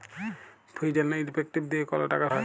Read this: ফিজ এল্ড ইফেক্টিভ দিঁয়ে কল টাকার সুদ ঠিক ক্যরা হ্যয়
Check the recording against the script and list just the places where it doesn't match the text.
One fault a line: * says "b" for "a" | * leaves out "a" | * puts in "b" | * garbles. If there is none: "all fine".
* leaves out "সুদ ঠিক ক্যরা"